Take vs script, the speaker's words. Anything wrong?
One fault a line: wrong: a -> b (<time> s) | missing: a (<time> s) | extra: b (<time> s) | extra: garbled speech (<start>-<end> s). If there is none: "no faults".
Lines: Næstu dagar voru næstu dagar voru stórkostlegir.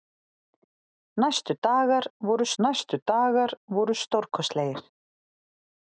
no faults